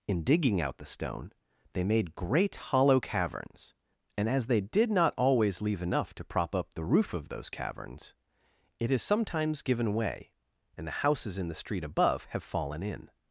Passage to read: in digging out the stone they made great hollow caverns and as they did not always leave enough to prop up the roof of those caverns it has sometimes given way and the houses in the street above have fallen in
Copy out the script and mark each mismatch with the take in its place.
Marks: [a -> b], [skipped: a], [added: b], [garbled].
in digging out the stone they made great hollow caverns and as they did not always leave enough to prop up the roof of those caverns it has sometimes given way and the houses in the street above have fallen in